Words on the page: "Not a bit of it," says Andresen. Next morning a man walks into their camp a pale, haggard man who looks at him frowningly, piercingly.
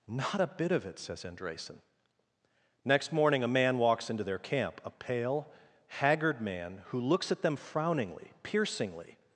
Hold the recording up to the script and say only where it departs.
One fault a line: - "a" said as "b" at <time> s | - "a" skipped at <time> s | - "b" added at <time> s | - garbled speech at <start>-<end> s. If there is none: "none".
- "him" said as "them" at 7.4 s